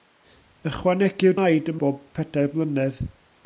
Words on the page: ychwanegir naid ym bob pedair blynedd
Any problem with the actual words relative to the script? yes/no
no